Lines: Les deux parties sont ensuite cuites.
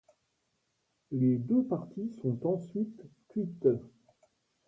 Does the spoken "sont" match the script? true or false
true